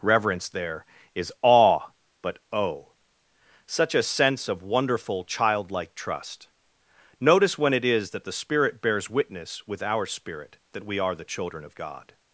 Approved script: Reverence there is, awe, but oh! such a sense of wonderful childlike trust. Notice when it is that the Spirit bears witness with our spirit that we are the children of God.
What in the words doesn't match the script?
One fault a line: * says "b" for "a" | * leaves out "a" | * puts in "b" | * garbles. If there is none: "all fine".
all fine